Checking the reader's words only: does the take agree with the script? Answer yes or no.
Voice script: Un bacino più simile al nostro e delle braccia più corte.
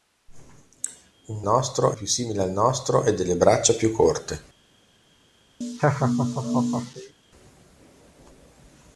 no